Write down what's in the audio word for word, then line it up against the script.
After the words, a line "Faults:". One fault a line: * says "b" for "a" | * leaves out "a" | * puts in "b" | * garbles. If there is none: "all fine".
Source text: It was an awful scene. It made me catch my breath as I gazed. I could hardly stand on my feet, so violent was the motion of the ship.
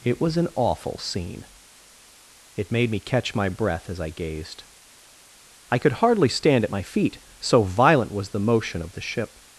It was an awful scene. It made me catch my breath as I gazed. I could hardly stand at my feet, so violent was the motion of the ship.
Faults:
* says "at" for "on"